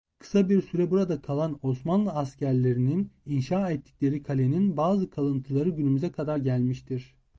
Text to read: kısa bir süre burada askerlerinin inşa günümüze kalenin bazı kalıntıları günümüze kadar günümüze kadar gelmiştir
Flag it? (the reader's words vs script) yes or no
yes